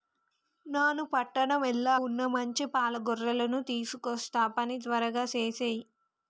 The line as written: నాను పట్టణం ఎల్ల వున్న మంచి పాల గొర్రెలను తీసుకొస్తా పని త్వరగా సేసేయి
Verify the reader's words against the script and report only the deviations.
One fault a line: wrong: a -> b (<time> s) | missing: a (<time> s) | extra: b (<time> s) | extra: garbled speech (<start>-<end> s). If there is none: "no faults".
no faults